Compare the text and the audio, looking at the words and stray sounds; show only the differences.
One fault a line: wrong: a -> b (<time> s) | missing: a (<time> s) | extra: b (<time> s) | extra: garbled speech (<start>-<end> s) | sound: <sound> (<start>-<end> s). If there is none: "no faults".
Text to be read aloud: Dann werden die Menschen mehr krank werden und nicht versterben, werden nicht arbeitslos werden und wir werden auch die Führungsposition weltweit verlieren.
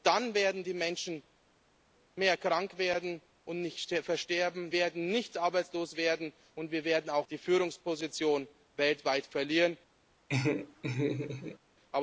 sound: laugh (10.3-11.6 s)